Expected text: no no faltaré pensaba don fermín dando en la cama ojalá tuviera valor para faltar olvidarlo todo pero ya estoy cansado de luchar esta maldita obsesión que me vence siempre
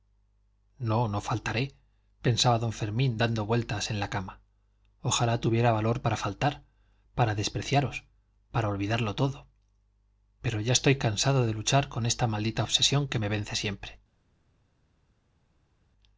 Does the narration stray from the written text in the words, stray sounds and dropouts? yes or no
yes